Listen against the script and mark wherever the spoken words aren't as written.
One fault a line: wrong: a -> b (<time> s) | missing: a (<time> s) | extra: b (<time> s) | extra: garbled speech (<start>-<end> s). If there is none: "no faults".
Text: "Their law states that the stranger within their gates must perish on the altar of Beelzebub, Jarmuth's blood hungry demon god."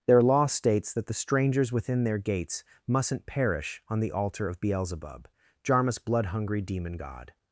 wrong: stranger -> strangers (1.1 s)
wrong: must -> mustn't (2.9 s)